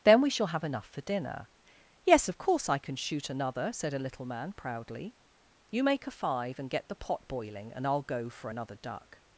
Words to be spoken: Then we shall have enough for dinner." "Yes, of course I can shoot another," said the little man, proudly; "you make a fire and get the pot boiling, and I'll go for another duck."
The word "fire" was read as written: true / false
false